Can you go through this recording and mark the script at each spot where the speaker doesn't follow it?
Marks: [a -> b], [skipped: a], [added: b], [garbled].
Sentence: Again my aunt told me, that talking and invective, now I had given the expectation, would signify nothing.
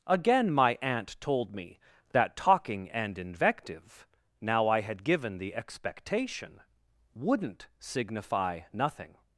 Again my aunt told me, that talking and invective, now I had given the expectation, [would -> wouldn't] signify nothing.